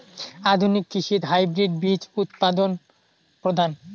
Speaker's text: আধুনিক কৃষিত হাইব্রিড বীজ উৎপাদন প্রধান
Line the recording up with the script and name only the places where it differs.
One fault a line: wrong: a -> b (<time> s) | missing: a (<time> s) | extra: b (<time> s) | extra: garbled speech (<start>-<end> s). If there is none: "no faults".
no faults